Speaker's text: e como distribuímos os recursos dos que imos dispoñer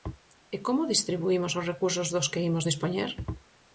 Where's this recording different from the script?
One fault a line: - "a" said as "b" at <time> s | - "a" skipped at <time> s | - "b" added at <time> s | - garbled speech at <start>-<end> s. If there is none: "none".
none